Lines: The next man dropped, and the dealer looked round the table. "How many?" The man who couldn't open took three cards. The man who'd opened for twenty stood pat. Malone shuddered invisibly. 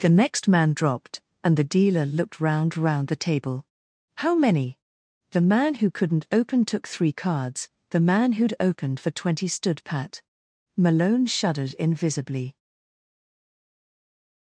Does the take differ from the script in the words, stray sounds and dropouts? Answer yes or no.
yes